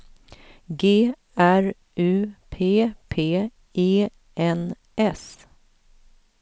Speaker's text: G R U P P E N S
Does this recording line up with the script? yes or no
yes